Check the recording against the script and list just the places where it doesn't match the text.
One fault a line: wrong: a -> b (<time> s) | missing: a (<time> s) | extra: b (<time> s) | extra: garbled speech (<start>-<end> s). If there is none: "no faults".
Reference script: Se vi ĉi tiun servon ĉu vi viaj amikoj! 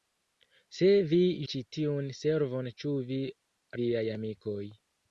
no faults